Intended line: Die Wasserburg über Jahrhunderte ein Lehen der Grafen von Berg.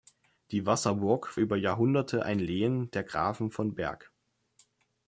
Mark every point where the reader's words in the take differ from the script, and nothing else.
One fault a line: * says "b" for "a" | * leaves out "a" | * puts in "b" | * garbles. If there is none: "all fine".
all fine